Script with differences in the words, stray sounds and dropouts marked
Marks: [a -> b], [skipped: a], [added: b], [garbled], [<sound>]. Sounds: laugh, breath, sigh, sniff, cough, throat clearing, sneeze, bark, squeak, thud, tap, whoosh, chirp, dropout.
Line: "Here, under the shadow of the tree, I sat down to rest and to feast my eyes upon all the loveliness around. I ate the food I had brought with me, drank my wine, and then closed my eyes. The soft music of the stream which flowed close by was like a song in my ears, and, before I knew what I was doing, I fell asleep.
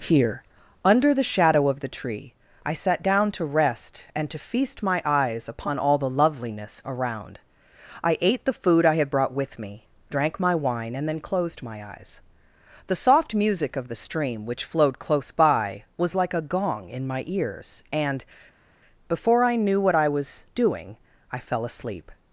"Here, under the shadow of the tree, I sat down to rest and to feast my eyes upon all the loveliness around. I ate the food I had brought with me, drank my wine, and then closed my eyes. The soft music of the stream which flowed close by was like a [song -> gong] in my ears, and, before I knew what I was doing, I fell asleep.